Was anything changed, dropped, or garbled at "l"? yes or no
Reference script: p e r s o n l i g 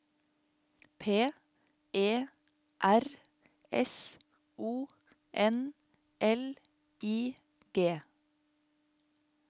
no